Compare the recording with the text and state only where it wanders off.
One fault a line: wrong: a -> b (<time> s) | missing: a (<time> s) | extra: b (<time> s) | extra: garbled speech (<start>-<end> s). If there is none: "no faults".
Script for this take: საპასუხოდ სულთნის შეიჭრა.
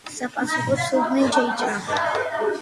no faults